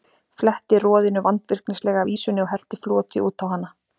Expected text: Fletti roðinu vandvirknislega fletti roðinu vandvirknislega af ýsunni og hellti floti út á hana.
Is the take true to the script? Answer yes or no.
no